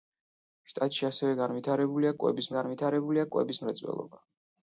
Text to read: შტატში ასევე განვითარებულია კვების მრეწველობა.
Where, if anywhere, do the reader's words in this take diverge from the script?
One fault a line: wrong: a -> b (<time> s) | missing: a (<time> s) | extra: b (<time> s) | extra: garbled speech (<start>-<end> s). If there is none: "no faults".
extra: განვითარებულია კვების (2.6 s)